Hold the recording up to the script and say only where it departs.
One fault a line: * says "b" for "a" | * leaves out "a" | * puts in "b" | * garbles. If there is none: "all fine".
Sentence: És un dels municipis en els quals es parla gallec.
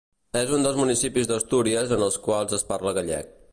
* puts in "d'Astúries"